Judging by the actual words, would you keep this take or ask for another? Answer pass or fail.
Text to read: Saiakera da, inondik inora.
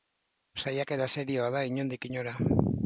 fail